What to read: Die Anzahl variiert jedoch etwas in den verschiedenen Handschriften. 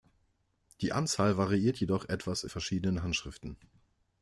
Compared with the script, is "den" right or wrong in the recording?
wrong